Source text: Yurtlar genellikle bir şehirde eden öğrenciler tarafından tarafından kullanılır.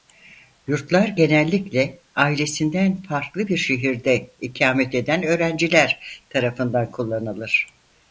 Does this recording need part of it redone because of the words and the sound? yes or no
yes